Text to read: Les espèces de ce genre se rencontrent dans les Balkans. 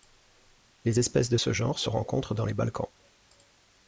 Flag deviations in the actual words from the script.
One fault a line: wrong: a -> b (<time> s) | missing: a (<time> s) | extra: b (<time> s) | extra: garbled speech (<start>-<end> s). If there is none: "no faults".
no faults